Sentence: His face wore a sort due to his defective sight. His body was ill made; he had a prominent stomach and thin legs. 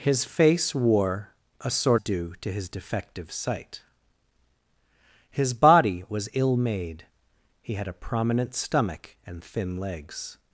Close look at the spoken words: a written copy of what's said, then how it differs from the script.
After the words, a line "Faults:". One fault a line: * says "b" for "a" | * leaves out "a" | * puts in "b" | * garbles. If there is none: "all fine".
His face wore a sort due to his defective sight. His body was ill made; he had a prominent stomach and thin legs.
Faults:
all fine